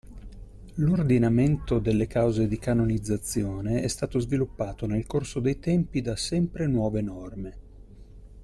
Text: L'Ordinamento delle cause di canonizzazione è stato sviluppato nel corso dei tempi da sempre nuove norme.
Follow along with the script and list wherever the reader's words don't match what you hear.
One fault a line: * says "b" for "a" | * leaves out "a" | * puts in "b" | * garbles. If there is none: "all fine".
all fine